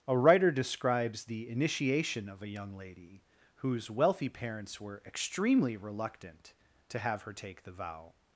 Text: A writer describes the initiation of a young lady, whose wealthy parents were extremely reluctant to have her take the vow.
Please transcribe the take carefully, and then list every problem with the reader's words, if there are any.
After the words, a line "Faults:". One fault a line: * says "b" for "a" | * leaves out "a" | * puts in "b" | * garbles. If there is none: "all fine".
A writer describes the initiation of a young lady, whose wealthy parents were extremely reluctant to have her take the vow.
Faults:
all fine